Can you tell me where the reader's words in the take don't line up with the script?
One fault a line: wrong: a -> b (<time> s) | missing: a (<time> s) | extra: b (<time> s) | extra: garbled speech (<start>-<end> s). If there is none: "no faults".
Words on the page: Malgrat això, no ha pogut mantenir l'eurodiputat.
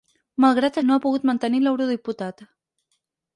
missing: això (0.8 s)